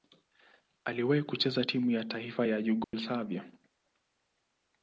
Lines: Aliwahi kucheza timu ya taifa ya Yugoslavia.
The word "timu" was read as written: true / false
true